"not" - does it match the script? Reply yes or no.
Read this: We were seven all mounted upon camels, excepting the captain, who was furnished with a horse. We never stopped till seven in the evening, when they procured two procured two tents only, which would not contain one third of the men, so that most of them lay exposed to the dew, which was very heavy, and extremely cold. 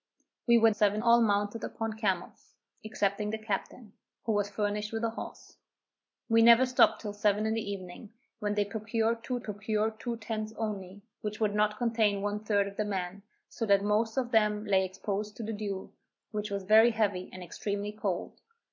yes